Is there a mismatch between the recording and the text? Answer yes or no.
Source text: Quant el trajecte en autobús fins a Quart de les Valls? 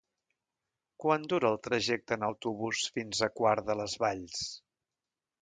yes